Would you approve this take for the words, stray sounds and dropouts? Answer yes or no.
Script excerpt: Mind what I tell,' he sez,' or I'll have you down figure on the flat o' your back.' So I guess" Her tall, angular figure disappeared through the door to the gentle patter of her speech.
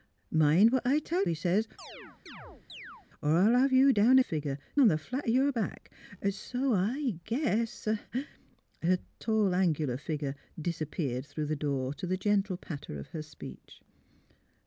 no